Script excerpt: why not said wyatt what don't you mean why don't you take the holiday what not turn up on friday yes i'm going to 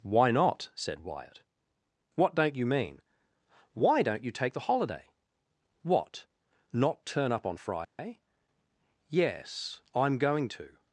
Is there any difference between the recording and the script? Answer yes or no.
no